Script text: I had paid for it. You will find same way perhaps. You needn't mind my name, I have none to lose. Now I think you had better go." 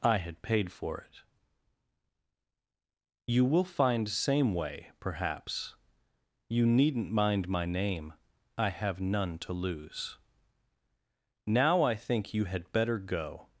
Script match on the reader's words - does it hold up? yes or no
yes